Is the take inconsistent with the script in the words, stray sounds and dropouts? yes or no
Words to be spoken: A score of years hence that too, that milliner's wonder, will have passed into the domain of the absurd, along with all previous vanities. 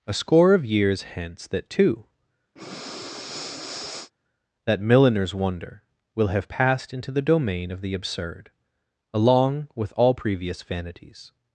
yes